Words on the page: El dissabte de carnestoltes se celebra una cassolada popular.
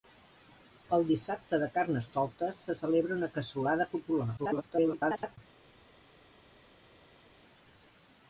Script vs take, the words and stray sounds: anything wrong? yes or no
yes